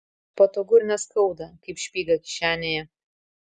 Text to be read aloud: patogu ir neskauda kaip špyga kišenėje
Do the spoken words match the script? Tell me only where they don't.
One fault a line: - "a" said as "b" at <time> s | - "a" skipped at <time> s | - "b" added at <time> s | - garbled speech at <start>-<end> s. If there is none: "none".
none